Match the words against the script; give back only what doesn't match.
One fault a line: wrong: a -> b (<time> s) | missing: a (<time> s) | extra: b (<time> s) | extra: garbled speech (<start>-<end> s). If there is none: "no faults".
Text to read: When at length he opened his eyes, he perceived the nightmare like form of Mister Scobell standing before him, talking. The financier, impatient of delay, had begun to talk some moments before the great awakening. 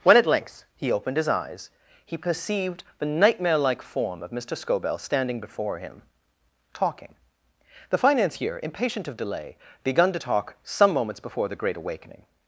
missing: had (9.6 s)